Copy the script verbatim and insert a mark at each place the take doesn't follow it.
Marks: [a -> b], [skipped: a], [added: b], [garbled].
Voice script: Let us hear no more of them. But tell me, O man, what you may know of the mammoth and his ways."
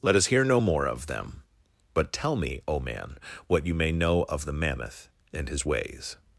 Let us hear no more of them. But tell me, O man, what you may know of the mammoth and his ways."